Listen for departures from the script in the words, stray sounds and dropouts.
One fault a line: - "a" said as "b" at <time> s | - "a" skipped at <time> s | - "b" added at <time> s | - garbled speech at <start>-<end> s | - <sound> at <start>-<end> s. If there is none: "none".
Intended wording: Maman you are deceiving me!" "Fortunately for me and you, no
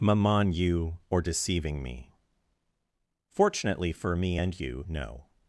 - "are" said as "or" at 1.1 s